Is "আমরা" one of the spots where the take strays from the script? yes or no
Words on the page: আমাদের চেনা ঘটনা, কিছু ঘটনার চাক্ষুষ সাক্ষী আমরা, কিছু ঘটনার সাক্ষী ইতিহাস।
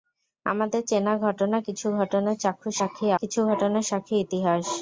yes